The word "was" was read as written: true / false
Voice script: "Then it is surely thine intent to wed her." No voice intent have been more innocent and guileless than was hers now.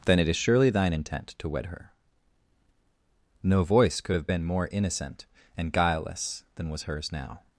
true